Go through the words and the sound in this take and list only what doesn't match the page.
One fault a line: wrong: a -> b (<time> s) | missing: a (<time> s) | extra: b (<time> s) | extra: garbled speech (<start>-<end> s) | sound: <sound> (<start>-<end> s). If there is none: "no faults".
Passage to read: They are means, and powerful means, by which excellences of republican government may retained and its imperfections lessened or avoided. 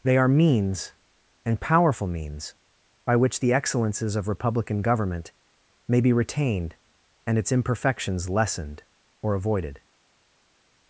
extra: the (3.4 s)
extra: be (6.0 s)